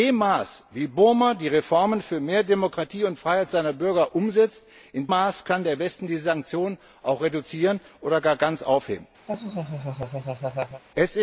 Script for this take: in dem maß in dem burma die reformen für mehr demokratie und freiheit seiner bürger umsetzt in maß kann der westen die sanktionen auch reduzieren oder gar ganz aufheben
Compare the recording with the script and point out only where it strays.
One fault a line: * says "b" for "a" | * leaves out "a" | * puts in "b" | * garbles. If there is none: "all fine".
all fine